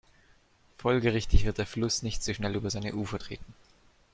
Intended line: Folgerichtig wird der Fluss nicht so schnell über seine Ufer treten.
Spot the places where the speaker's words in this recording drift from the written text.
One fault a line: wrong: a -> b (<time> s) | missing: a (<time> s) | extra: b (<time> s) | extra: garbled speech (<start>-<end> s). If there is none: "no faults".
no faults